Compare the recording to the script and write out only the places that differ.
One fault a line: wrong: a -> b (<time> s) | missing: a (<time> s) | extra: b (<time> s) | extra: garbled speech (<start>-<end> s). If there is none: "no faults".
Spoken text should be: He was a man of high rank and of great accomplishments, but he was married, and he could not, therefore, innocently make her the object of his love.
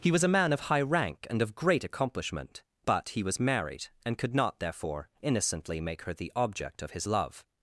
wrong: accomplishments -> accomplishment (1.8 s)
missing: he (4.2 s)